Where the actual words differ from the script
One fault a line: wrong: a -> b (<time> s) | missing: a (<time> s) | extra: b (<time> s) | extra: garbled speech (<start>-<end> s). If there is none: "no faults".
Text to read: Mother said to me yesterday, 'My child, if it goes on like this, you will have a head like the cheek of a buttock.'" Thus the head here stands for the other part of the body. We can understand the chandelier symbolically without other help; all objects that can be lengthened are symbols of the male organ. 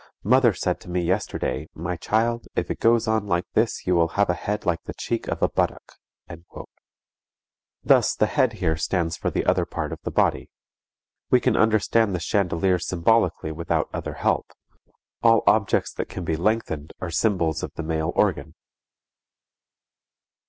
no faults